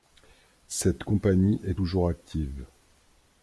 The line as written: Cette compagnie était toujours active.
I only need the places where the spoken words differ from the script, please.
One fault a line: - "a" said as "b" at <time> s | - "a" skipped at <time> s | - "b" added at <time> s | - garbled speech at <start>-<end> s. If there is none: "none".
- "était" said as "est" at 1.6 s